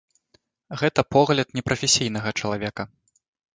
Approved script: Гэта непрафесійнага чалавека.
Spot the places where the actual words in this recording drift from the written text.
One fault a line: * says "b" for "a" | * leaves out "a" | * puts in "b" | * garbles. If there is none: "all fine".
* puts in "погляд"